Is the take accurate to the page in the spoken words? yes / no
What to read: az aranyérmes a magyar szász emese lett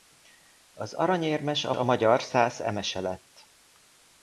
no